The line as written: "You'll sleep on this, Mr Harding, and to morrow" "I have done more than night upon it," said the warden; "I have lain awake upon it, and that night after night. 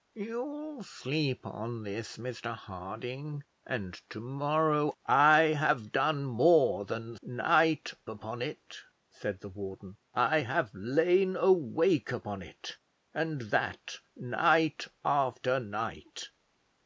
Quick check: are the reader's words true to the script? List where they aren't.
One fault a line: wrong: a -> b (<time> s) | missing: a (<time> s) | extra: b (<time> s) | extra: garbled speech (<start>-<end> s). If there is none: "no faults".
no faults